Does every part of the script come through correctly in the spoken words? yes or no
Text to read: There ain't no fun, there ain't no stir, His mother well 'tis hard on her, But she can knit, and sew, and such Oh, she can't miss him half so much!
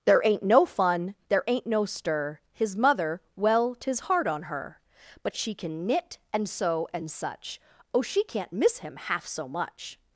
yes